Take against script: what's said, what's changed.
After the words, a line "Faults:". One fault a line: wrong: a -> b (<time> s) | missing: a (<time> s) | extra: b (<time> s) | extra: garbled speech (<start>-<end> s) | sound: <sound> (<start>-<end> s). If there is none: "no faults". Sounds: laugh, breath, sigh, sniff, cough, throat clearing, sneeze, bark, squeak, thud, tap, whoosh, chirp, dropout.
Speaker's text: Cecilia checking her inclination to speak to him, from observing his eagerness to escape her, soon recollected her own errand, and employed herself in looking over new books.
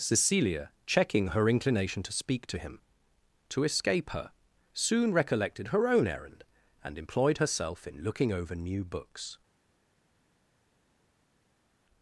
Cecilia checking her inclination to speak to him, to escape her, soon recollected her own errand, and employed herself in looking over new books.
Faults:
missing: from observing his eagerness (2.8 s)